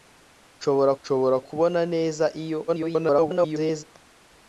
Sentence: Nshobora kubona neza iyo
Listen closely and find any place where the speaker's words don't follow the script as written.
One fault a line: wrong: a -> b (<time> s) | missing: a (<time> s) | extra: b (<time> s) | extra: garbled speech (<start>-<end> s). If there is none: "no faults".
extra: nshobora (1.0 s)
extra: garbled speech (2.7-3.8 s)